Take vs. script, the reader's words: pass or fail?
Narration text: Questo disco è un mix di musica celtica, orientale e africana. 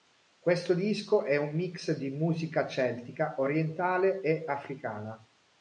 pass